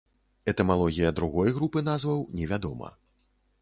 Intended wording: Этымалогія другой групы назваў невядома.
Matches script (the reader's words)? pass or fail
pass